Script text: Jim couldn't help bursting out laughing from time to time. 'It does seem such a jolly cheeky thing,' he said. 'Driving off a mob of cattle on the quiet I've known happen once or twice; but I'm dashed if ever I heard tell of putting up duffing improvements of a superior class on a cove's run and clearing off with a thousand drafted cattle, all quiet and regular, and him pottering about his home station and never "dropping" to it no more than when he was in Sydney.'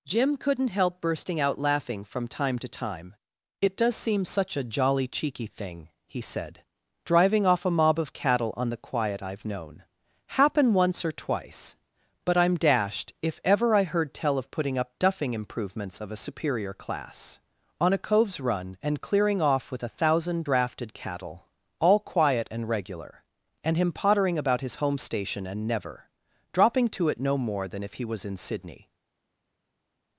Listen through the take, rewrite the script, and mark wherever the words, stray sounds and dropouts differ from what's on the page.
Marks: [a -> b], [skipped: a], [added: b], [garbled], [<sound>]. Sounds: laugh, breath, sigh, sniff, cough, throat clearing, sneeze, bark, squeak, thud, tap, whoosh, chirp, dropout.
Jim couldn't help bursting out laughing from time to time. 'It does seem such a jolly cheeky thing,' he said. 'Driving off a mob of cattle on the quiet I've known happen once or twice; but I'm dashed if ever I heard tell of putting up duffing improvements of a superior class on a cove's run and clearing off with a thousand drafted cattle, all quiet and regular, and him pottering about his home station and never "dropping" to it no more than [when -> if] he was in Sydney.'